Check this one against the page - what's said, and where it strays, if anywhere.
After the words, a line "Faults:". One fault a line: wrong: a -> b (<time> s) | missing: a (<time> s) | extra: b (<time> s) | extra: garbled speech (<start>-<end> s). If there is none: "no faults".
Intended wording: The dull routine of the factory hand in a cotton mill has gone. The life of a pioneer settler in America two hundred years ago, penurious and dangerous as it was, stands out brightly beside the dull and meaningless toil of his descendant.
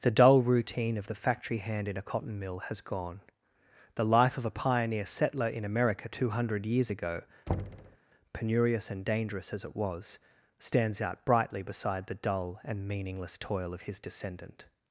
The dull routine of the factory hand in a cotton mill has gone. The life of a pioneer settler in America two hundred years ago, penurious and dangerous as it was, stands out brightly beside the dull and meaningless toil of his descendant.
Faults:
no faults